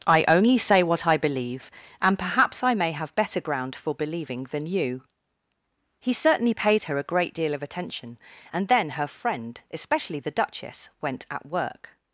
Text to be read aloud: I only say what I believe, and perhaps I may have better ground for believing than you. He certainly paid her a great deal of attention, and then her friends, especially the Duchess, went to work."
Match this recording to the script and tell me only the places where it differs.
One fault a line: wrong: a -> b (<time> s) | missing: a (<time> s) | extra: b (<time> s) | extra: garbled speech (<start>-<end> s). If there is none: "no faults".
wrong: friends -> friend (9.1 s)
wrong: to -> at (11.3 s)